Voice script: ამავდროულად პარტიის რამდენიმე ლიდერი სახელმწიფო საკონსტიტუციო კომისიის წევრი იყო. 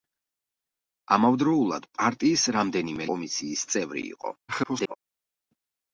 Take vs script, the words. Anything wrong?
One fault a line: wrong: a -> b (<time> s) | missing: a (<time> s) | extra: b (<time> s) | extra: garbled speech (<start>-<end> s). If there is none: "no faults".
missing: ლიდერი სახელმწიფო საკონსტიტუციო (3.1 s)
extra: garbled speech (4.5-5.0 s)